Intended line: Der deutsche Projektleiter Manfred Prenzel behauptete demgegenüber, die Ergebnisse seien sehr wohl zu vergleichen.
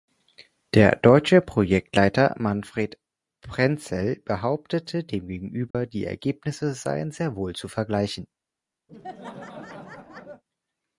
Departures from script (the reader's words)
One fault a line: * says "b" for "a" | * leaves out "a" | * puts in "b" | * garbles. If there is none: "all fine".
all fine